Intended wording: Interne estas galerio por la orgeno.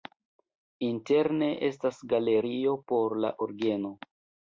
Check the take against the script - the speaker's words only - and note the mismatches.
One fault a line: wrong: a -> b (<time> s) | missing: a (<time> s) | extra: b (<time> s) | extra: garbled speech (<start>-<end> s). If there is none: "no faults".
no faults